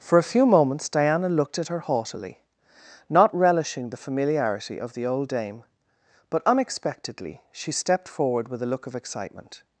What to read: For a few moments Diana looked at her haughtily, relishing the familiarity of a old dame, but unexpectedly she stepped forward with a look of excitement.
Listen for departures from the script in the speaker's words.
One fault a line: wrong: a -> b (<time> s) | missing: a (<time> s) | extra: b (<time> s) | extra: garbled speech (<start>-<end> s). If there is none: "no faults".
extra: not (3.1 s)
wrong: a -> the (4.9 s)